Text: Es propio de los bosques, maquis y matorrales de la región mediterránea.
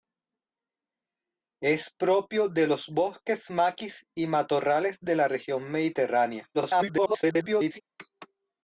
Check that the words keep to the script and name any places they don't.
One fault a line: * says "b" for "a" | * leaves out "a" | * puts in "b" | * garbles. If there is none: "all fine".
* garbles